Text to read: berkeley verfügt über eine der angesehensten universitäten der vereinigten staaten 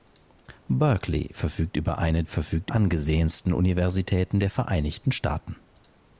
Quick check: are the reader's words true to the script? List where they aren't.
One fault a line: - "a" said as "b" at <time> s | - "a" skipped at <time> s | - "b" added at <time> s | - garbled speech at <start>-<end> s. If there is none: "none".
- "der" said as "verfügt" at 2.2 s